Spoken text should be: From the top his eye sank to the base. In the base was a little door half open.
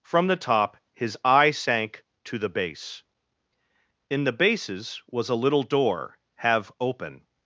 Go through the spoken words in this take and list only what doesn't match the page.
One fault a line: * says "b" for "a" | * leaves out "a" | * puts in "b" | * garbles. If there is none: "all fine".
* says "bases" for "base"
* says "have" for "half"